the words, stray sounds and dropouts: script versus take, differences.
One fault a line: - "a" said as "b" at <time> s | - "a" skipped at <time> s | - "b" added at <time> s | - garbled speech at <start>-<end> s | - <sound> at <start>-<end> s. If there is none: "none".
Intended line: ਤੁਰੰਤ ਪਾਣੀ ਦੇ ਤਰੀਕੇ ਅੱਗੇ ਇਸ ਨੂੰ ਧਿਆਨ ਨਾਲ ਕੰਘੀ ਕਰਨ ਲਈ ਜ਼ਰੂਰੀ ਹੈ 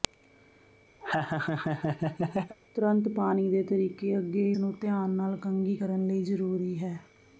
- laugh at 1.0-2.6 s
- "ਇਸ" skipped at 4.5 s